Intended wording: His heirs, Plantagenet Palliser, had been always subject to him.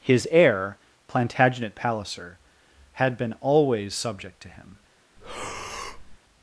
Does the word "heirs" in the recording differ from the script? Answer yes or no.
yes